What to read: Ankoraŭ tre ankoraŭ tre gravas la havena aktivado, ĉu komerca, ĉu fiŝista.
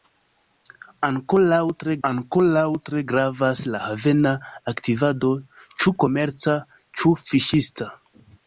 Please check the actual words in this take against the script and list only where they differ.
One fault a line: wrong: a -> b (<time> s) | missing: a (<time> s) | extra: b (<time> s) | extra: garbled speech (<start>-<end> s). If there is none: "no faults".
no faults